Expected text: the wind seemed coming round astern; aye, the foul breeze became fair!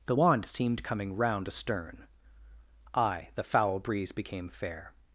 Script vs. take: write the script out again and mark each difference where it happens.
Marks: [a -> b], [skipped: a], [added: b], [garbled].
the [wind -> wand] seemed coming round astern; aye, the foul breeze became fair!